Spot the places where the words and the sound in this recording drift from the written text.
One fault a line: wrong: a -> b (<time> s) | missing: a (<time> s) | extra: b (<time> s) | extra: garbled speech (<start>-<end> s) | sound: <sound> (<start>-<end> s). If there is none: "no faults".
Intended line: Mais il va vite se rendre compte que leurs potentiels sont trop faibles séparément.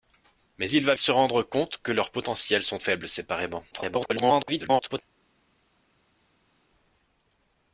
missing: vite (0.9 s)
missing: trop (2.8 s)
extra: garbled speech (3.7-5.0 s)